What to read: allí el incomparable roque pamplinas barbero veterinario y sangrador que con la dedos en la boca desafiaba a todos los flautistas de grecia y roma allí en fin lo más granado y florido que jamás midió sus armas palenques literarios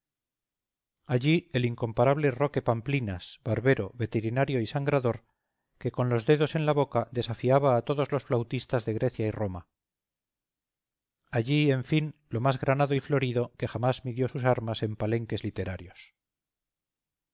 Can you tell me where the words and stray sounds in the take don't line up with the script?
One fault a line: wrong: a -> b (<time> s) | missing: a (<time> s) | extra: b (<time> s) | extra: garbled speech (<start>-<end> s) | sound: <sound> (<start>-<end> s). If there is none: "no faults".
wrong: la -> los (6.1 s)
extra: en (14.8 s)